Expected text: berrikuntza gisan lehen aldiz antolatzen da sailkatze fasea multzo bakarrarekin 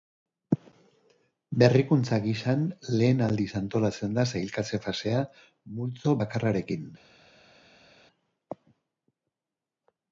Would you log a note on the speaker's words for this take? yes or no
no